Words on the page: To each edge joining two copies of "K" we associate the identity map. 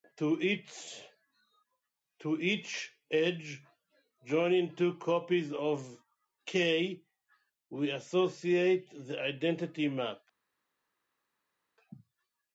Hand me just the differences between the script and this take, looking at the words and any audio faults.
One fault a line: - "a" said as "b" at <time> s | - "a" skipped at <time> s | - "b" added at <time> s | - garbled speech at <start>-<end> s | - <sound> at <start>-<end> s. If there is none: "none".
none